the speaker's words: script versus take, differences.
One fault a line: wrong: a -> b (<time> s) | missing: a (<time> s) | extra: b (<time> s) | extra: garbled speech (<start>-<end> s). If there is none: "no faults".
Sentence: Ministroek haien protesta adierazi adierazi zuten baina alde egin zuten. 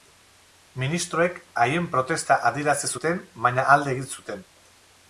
missing: adierazi (2.9 s)